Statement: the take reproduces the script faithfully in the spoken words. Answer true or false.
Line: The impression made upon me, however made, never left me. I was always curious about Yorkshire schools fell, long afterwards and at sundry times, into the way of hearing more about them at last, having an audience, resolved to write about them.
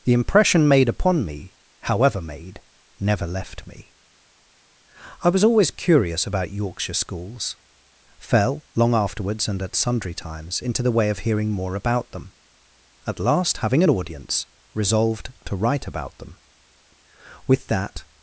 false